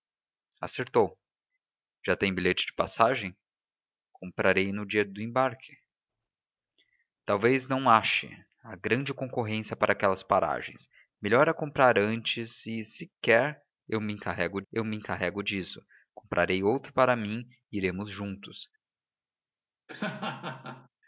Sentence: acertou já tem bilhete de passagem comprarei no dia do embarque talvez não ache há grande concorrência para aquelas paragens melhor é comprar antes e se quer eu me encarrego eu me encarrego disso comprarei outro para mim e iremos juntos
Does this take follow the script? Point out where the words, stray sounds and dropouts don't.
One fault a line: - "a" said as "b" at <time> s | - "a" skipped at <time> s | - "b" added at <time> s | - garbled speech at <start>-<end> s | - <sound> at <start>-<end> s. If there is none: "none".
- laugh at 19.9-20.9 s